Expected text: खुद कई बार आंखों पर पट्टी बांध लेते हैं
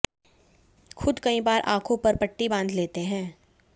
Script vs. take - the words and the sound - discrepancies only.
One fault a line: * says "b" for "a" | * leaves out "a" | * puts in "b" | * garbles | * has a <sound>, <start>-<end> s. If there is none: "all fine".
all fine